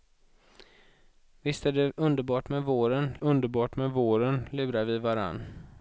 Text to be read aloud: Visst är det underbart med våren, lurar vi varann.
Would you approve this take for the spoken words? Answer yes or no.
no